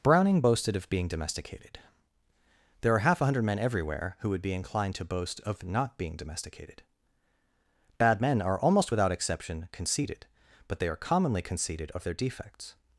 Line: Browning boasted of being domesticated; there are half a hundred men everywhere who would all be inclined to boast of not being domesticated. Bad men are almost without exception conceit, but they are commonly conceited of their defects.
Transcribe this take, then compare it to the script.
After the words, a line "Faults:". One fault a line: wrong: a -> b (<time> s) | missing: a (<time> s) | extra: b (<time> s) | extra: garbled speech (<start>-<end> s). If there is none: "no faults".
Browning boasted of being domesticated; there are half a hundred men everywhere who would be inclined to boast of not being domesticated. Bad men are almost without exception conceited, but they are commonly conceited of their defects.
Faults:
missing: all (4.4 s)
wrong: conceit -> conceited (9.7 s)